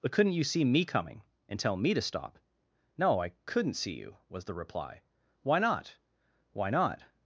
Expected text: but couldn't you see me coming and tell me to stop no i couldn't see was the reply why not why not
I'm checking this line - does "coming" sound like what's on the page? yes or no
yes